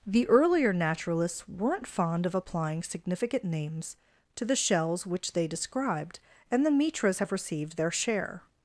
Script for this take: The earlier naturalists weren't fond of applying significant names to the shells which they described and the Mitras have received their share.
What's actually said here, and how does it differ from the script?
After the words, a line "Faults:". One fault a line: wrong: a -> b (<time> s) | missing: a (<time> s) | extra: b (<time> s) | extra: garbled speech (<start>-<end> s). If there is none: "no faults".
The earlier naturalists weren't fond of applying significant names to the shells which they described and the Mitras have received their share.
Faults:
no faults